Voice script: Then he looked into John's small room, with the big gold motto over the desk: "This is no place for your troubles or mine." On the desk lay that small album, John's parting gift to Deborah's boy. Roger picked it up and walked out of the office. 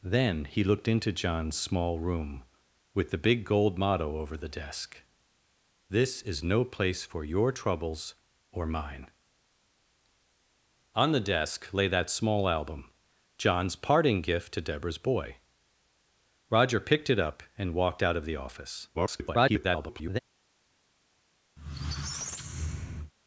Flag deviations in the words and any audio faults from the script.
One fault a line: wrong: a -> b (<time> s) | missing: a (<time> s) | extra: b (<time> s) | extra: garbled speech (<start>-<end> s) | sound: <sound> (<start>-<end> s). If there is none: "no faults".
extra: garbled speech (18.9-20.2 s)
sound: squeak (21.6-23.1 s)